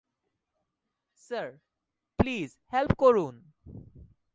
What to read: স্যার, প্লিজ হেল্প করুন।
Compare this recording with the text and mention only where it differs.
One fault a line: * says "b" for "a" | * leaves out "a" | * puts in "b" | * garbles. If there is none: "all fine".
all fine